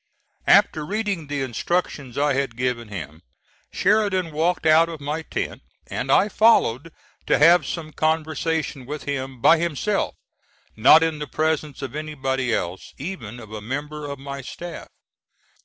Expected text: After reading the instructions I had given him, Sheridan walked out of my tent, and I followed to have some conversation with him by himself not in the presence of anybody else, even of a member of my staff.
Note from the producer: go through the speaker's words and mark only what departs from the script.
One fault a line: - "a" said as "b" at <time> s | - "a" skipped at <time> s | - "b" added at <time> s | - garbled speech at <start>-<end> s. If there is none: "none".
none